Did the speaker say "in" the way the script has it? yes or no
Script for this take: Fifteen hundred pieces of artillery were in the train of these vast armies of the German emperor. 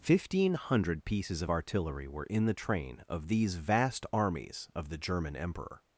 yes